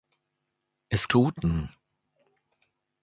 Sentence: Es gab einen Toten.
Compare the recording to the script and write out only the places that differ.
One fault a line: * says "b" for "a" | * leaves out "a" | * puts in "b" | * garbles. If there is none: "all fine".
* leaves out "gab einen"